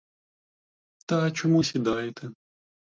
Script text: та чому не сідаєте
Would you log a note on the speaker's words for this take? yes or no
yes